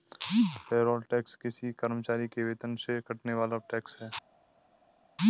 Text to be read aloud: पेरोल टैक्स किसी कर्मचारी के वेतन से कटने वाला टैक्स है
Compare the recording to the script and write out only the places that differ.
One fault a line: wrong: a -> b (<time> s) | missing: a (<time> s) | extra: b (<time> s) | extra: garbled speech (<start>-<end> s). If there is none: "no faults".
no faults